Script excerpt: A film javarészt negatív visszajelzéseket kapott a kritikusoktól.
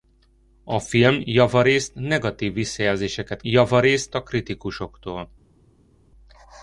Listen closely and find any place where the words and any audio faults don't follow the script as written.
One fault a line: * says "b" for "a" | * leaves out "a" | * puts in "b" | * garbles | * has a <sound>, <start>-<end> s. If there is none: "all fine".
* says "javarészt" for "kapott"